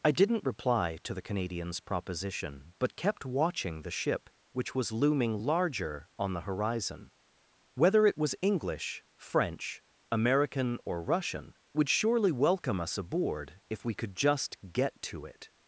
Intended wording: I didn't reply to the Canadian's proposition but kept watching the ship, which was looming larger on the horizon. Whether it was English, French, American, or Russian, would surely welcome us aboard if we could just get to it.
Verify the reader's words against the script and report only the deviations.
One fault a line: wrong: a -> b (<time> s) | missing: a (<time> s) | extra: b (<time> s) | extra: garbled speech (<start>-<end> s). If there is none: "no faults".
no faults